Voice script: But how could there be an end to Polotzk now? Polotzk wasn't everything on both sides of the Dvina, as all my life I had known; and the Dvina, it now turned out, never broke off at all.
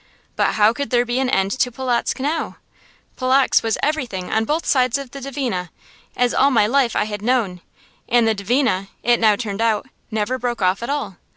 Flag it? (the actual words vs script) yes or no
yes